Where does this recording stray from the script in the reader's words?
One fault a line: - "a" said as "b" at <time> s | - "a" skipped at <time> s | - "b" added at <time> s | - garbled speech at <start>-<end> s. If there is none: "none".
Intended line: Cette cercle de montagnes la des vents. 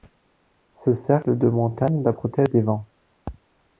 - "Cette" said as "Ce" at 0.8 s
- "protège" added at 2.1 s